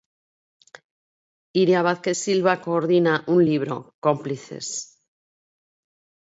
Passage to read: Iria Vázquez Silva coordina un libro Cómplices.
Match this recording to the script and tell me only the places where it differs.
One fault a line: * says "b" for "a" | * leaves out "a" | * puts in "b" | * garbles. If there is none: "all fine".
all fine